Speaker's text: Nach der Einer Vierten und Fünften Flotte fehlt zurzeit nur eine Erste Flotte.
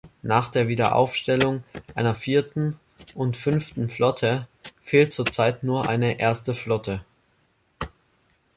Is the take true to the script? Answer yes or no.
no